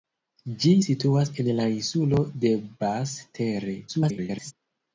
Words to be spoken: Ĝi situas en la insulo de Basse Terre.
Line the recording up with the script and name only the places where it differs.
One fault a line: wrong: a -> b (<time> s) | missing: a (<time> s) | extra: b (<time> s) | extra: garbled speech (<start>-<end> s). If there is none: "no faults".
extra: garbled speech (3.9-4.5 s)